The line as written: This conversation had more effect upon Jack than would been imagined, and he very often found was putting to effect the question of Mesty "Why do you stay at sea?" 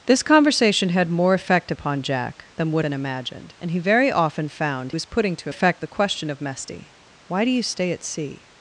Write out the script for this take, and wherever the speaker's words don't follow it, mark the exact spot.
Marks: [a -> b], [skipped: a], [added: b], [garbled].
This conversation had more effect upon Jack than would been imagined, and he very often found was putting to effect the question of Mesty "Why do you stay at sea?"